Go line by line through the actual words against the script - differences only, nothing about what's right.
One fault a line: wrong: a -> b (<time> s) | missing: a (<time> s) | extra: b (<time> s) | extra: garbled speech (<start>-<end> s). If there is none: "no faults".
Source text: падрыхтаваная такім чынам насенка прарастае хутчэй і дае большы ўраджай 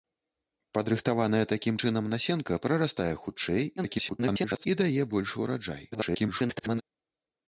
extra: garbled speech (3.8-4.7 s)
extra: garbled speech (5.9-6.8 s)